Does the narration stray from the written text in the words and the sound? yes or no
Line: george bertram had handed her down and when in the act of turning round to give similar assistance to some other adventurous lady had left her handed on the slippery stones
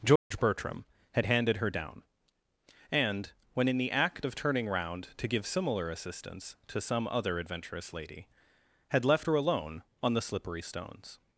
yes